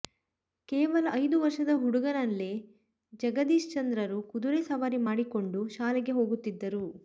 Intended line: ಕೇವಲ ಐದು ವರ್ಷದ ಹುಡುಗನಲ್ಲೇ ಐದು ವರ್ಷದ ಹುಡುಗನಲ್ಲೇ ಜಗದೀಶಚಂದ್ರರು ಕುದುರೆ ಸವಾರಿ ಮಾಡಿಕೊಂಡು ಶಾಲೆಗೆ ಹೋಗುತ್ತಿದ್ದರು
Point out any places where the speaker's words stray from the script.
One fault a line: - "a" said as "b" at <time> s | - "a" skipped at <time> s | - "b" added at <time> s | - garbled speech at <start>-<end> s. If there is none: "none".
- "ಐದು ವರ್ಷದ ಹುಡುಗನಲ್ಲೇ" skipped at 2.5 s